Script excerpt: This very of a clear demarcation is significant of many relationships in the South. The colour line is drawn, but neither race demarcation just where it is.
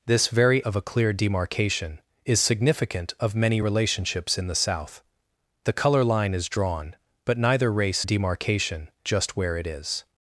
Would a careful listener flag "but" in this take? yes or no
no